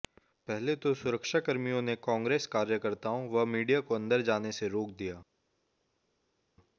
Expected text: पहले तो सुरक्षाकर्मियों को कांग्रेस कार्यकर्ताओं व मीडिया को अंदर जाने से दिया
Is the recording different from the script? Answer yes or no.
yes